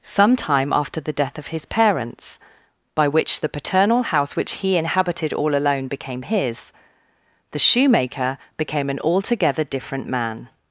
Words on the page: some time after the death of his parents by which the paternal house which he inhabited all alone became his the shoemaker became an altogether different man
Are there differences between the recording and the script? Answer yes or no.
no